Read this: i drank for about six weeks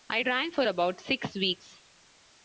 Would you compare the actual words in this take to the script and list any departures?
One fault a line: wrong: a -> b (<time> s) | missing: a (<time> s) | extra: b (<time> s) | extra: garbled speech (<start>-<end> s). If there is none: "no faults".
no faults